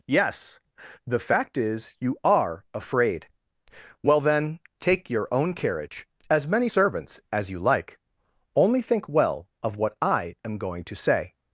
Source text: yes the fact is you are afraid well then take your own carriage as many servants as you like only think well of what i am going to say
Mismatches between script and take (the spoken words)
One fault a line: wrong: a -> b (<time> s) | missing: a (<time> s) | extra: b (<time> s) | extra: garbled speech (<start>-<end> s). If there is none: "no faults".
no faults